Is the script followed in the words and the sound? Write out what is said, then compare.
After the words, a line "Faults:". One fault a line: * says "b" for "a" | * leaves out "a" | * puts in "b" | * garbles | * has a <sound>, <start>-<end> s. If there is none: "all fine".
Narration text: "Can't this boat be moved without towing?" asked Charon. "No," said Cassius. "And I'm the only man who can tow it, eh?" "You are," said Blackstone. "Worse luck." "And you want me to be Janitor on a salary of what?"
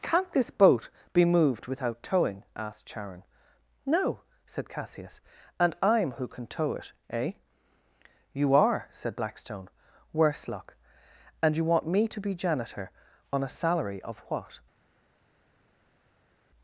"Can't this boat be moved without towing?" asked Charon. "No," said Cassius. "And I'm who can tow it, eh?" "You are," said Blackstone. "Worse luck." "And you want me to be Janitor on a salary of what?"
Faults:
* leaves out "the only man"